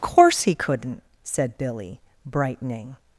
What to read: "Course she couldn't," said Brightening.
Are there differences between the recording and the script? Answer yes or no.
yes